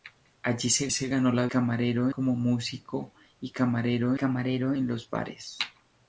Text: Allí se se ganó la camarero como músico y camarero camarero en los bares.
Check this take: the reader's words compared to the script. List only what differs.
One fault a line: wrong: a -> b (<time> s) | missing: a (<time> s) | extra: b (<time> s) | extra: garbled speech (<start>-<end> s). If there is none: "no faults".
no faults